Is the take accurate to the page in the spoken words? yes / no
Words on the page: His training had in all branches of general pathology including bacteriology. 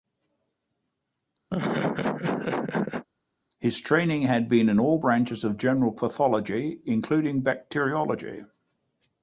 no